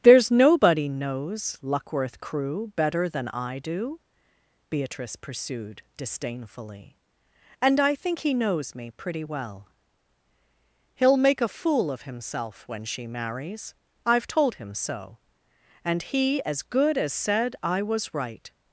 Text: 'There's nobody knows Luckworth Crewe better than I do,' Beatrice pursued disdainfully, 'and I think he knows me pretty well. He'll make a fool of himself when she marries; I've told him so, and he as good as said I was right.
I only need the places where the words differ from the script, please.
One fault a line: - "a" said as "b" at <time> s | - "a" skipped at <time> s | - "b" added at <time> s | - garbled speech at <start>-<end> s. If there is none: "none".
none